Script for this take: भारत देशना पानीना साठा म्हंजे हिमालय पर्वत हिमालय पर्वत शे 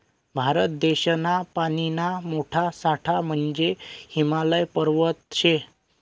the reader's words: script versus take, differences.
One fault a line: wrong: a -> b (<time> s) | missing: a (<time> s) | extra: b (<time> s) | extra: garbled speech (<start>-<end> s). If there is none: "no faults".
extra: मोठा (2.2 s)
missing: हिमालय पर्वत (5.2 s)